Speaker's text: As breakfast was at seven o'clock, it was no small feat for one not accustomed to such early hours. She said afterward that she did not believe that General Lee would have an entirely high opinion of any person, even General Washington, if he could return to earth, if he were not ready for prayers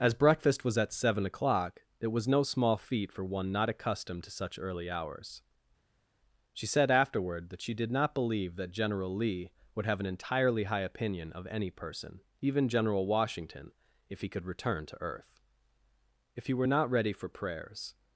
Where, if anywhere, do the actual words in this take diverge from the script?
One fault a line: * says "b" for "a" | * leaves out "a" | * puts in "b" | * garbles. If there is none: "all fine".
all fine